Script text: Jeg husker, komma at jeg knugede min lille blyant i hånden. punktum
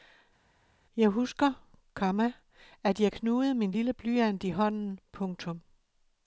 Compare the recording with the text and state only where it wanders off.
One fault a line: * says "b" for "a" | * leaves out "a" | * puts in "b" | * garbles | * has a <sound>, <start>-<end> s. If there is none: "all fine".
all fine